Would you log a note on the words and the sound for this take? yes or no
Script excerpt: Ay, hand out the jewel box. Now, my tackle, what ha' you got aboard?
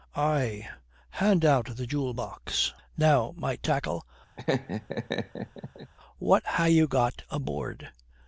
yes